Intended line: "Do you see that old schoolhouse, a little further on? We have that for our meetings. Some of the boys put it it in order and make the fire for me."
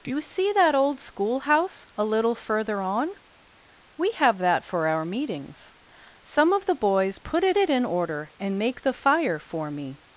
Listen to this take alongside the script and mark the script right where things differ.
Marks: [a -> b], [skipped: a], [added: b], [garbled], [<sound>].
"Do you see that old schoolhouse, a little further on? We have that for our meetings. Some of the boys put it it in order and make the fire for me."